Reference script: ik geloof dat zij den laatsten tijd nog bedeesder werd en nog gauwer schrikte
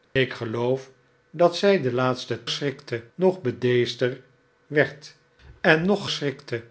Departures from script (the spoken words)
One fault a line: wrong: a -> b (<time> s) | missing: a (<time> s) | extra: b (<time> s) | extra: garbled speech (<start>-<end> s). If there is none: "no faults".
wrong: tijd -> schrikte (2.5 s)
missing: gauwer (6.0 s)